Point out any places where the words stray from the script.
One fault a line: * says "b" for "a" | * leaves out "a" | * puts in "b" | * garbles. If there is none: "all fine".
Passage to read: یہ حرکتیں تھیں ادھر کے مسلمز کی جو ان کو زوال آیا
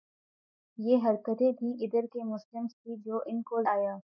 * leaves out "زوال"